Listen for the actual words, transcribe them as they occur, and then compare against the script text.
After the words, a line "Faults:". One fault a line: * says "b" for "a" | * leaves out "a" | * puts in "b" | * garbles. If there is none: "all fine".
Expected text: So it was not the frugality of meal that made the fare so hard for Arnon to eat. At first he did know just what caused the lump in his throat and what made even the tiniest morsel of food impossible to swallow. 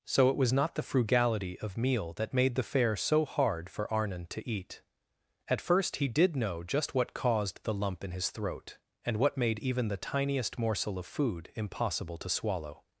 So it was not the frugality of meal that made the fare so hard for Arnon to eat. At first he did know just what caused the lump in his throat and what made even the tiniest morsel of food impossible to swallow.
Faults:
all fine